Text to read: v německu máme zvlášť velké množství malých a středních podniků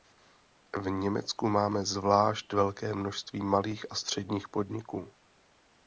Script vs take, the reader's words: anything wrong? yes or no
no